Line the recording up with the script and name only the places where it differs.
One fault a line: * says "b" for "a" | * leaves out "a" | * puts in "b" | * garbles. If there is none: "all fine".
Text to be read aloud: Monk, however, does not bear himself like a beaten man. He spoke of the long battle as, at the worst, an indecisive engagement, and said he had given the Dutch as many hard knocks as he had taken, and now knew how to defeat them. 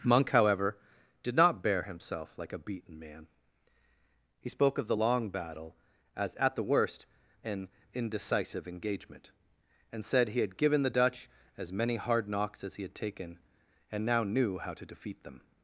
* says "did" for "does"